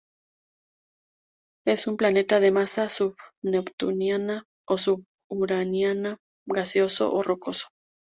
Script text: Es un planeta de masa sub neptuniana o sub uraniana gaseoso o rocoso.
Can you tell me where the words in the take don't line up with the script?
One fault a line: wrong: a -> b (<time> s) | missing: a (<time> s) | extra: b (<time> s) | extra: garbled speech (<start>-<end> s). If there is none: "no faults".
no faults